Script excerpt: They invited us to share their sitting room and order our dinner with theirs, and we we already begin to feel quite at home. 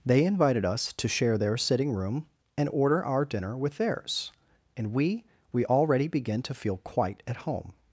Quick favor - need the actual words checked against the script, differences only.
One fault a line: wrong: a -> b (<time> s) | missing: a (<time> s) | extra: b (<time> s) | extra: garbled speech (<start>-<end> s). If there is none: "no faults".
no faults